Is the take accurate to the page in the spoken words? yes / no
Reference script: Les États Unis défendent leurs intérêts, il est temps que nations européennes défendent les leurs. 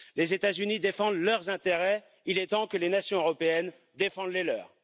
no